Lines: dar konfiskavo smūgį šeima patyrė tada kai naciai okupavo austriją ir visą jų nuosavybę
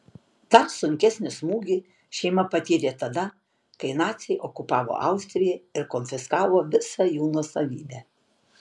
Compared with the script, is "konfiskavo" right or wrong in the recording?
wrong